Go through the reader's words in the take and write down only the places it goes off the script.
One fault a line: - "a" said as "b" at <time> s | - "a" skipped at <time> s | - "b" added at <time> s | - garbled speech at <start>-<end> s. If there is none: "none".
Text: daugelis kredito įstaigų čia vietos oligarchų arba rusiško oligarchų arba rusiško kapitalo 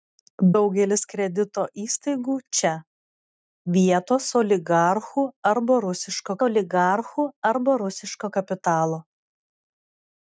none